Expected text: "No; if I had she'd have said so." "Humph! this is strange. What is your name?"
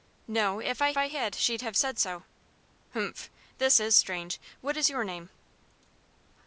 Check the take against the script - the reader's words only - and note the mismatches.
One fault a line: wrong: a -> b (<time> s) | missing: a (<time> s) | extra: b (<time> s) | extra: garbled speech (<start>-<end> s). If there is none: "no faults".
extra: I (1.0 s)